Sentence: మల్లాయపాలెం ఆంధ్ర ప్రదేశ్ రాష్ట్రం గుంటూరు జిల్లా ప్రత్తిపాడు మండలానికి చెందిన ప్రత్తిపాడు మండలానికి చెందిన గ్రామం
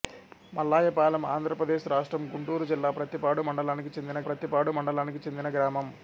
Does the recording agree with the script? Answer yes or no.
yes